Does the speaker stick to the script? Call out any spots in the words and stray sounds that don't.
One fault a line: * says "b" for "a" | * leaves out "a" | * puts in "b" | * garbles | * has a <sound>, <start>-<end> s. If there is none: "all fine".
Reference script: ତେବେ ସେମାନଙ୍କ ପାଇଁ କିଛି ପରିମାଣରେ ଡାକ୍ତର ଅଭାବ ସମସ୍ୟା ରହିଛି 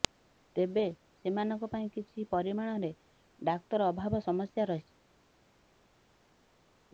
all fine